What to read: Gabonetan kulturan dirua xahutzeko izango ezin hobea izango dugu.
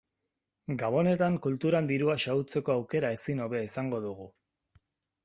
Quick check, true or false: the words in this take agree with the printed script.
false